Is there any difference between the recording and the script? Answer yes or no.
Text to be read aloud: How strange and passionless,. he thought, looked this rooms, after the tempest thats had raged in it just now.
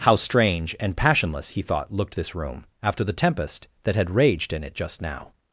yes